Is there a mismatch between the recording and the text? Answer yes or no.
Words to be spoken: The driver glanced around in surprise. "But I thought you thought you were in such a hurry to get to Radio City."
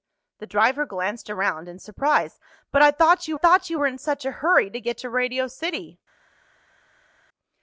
no